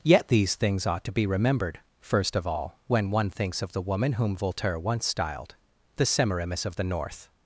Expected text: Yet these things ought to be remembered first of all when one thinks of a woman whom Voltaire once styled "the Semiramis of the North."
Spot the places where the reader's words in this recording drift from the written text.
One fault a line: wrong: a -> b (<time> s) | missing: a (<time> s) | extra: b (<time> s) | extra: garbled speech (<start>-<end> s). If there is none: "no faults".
wrong: a -> the (3.7 s)